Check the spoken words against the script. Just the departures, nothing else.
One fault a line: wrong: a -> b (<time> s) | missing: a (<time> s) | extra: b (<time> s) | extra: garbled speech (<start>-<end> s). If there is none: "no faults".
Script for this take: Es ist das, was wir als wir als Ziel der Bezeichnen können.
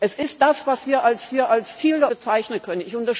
no faults